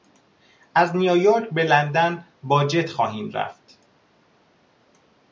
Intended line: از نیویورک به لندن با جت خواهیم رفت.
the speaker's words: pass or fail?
pass